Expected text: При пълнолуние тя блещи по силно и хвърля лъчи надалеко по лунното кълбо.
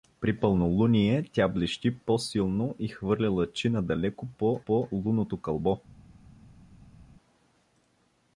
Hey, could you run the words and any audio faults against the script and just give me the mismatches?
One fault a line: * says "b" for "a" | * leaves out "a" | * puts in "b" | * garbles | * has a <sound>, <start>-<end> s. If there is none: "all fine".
* puts in "по"